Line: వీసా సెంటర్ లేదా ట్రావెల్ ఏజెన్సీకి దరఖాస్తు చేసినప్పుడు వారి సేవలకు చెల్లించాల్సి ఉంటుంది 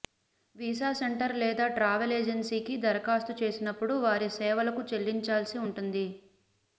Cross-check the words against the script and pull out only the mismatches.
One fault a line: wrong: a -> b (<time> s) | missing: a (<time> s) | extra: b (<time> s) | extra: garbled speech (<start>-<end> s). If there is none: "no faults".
no faults